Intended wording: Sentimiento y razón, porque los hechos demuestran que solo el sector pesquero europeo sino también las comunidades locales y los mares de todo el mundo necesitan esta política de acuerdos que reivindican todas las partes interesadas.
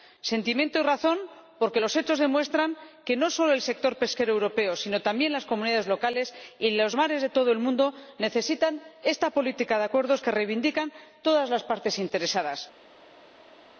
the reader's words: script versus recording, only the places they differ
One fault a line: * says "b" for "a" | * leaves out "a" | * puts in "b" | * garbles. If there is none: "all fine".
* puts in "no"